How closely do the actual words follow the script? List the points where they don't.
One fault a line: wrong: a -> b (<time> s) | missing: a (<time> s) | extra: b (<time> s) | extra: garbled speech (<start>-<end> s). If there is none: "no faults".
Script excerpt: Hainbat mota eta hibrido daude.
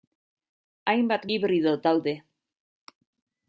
missing: mota eta (1.3 s)